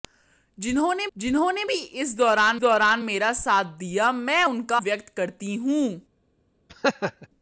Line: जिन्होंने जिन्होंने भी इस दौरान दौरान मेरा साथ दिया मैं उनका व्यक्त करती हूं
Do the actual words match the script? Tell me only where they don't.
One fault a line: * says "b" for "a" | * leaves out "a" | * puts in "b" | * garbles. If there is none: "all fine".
all fine